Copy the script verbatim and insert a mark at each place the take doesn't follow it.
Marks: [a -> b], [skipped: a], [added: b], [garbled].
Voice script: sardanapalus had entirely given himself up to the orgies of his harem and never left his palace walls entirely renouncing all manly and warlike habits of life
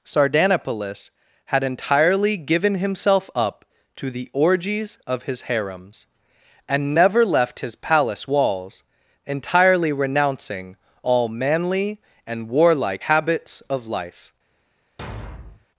sardanapalus had entirely given himself up to the orgies of his [harem -> harems] and never left his palace walls entirely renouncing all manly and warlike habits of life